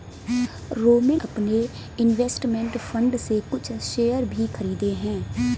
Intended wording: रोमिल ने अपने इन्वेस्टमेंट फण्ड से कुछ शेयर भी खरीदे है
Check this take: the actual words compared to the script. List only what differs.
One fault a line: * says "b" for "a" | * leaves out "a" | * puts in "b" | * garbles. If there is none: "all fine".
* leaves out "ने"